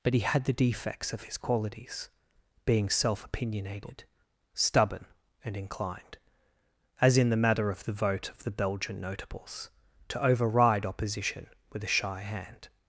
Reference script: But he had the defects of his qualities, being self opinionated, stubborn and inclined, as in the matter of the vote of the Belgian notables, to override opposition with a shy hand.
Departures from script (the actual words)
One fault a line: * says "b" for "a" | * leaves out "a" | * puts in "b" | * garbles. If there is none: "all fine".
all fine